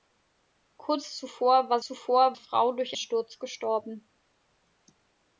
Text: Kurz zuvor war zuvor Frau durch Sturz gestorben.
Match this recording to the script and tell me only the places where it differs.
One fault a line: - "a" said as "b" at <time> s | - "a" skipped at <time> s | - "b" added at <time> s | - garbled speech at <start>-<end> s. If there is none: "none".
none